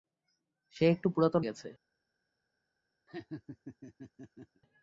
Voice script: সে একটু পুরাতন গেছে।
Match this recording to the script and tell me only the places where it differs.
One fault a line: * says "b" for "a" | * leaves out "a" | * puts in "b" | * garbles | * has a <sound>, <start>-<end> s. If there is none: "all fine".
* has a laugh, 3.1-4.6 s